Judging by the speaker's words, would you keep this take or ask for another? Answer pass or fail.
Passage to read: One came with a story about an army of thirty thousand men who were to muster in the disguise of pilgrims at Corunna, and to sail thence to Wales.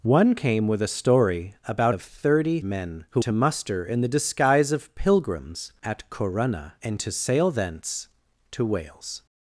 fail